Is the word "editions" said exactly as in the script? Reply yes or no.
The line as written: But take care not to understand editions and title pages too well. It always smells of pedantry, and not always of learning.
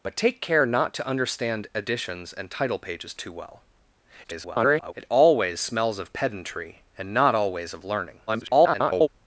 yes